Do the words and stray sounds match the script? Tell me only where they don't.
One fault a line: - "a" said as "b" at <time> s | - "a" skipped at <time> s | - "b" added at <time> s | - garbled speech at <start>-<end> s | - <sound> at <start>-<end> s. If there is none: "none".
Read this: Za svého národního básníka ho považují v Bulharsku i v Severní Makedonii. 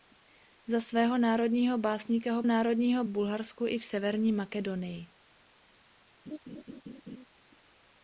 - "považují" said as "národního" at 2.4 s
- laugh at 6.3-7.3 s